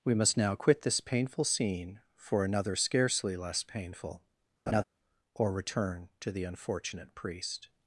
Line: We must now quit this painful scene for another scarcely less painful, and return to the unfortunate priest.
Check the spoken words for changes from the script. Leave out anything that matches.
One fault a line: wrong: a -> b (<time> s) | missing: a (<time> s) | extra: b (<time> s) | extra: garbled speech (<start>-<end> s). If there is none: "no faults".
wrong: and -> or (5.3 s)